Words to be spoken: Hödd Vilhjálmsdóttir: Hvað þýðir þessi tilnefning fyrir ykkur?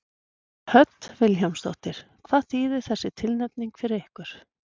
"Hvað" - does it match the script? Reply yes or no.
yes